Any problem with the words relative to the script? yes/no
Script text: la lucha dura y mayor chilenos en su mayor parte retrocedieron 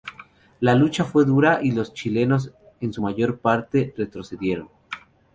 yes